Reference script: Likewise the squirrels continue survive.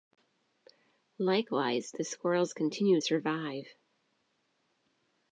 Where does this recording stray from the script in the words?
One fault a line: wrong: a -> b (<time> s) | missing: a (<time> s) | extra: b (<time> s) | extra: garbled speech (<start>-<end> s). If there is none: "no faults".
no faults